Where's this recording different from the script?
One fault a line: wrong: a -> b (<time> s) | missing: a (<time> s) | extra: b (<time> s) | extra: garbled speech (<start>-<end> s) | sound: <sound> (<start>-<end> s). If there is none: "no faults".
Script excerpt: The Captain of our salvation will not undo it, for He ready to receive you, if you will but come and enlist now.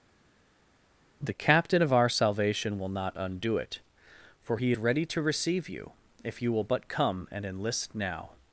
no faults